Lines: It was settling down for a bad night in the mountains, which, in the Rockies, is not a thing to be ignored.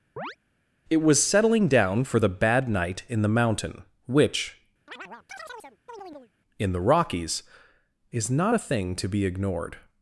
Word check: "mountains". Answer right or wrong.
wrong